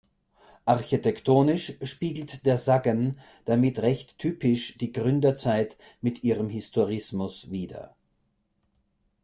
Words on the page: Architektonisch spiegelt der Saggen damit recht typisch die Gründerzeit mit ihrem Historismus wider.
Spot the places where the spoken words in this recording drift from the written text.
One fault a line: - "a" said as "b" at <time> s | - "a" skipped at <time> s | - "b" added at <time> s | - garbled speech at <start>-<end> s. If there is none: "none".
none